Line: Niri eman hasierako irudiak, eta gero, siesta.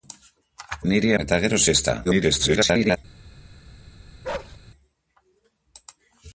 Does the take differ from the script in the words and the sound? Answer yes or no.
yes